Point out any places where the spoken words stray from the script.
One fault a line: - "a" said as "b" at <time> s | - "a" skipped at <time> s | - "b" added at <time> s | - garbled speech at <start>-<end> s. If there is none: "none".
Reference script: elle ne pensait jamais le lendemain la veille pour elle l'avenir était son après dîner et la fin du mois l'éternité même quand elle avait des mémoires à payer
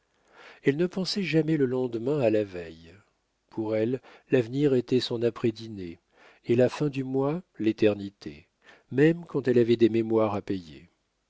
- "à" added at 2.2 s